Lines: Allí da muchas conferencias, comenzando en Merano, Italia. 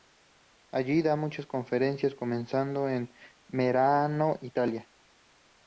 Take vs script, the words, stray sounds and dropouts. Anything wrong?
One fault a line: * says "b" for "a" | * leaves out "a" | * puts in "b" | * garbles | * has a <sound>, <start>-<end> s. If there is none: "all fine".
all fine